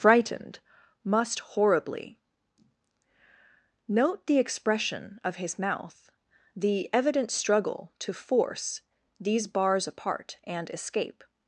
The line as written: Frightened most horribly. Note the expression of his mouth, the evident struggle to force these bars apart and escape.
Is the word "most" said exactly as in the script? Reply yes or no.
no